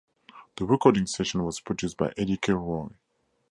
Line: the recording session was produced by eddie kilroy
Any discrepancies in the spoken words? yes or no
no